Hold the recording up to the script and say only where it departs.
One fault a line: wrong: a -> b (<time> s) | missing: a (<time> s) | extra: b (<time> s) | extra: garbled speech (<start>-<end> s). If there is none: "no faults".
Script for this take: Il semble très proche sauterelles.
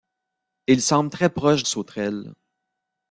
no faults